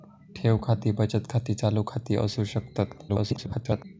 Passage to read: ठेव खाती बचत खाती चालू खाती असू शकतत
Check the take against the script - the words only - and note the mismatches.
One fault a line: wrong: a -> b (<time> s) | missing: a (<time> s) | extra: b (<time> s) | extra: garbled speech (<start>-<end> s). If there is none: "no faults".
extra: garbled speech (3.1-3.8 s)